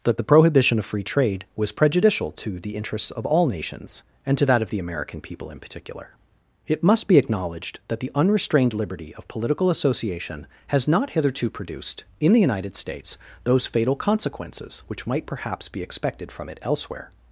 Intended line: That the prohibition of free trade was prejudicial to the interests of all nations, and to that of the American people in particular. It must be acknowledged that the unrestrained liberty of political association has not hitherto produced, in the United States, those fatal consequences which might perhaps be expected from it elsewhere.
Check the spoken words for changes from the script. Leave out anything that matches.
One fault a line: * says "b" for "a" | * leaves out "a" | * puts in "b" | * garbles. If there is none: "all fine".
all fine